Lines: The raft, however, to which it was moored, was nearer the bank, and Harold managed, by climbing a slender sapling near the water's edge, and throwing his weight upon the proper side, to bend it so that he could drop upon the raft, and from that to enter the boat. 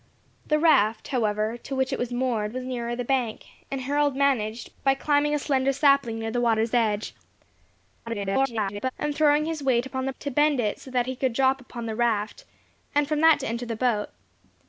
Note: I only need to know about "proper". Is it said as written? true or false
false